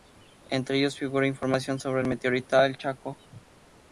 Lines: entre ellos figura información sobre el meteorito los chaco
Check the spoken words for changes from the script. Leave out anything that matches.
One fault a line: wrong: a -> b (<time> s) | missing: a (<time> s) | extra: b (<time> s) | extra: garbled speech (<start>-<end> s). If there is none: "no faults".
wrong: los -> el (2.6 s)